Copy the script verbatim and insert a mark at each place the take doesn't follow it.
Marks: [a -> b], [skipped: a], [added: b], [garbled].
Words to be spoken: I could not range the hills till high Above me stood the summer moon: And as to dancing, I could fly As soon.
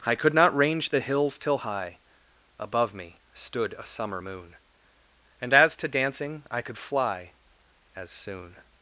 I could not range the hills till high Above me stood [the -> a] summer moon: And as to dancing, I could fly As soon.